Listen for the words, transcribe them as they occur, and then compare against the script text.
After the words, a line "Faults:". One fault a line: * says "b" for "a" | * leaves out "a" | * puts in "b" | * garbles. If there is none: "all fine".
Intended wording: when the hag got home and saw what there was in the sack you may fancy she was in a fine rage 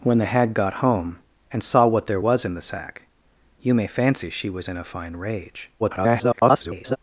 when the hag got home and saw what there was in the sack you may fancy she was in a fine rage [garbled]
Faults:
* garbles